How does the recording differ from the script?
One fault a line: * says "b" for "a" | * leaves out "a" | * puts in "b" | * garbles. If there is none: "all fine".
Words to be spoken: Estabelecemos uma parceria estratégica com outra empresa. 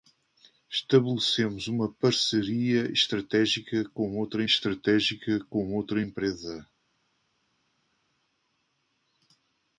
* puts in "estratégica com outra"